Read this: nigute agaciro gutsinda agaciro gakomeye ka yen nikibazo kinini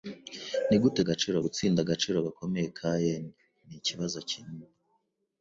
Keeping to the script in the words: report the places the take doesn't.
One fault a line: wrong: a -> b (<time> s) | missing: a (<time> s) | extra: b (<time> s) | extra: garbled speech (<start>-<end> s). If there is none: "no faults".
no faults